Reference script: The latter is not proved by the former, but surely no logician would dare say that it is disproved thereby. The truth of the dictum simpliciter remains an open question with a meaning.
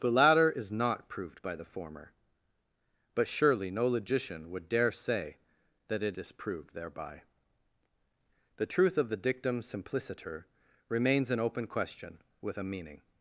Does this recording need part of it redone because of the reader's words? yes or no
yes